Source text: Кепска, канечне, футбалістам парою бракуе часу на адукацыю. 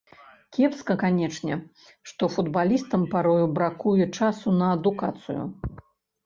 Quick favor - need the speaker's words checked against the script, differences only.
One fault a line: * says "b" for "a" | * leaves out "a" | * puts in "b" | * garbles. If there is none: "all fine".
* puts in "што"